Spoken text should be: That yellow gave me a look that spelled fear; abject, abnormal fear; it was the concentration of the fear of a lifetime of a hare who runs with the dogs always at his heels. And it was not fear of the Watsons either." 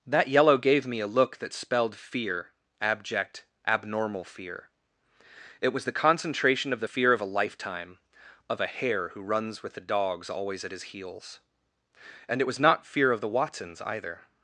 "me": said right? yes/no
yes